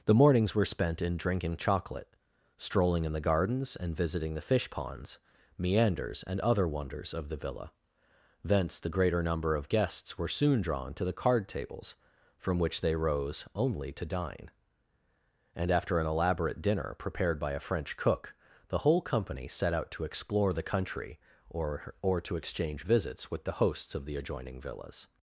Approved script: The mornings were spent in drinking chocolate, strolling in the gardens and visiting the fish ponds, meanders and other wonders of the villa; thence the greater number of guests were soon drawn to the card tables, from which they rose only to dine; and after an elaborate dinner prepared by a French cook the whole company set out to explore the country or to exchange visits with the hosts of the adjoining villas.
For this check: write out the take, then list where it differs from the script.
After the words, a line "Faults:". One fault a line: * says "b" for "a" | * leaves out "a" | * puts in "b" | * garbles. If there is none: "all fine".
The mornings were spent in drinking chocolate, strolling in the gardens and visiting the fish ponds, meanders and other wonders of the villa; thence the greater number of guests were soon drawn to the card tables, from which they rose only to dine; and after an elaborate dinner prepared by a French cook the whole company set out to explore the country or or to exchange visits with the hosts of the adjoining villas.
Faults:
* puts in "or"